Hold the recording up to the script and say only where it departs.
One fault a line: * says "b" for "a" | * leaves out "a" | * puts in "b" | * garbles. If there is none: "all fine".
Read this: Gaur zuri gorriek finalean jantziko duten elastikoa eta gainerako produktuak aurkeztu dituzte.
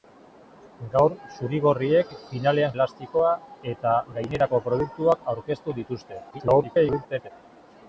* leaves out "jantziko duten"
* garbles